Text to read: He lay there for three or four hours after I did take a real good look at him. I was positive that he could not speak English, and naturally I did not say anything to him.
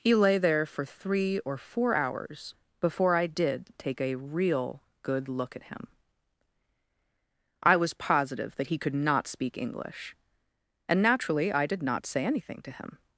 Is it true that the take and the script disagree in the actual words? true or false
true